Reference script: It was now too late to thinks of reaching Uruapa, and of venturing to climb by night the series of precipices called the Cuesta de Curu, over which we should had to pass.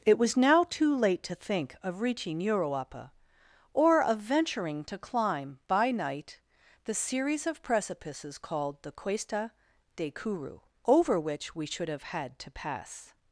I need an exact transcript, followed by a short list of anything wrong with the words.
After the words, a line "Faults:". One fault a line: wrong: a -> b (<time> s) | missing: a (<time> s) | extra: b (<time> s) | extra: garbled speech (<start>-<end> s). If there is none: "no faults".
It was now too late to think of reaching Uruapa, or of venturing to climb by night the series of precipices called the Cuesta de Curu, over which we should have had to pass.
Faults:
wrong: thinks -> think (1.4 s)
wrong: and -> or (3.7 s)
extra: have (11.9 s)